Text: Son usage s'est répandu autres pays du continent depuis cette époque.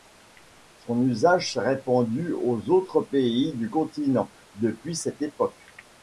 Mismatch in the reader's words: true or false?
true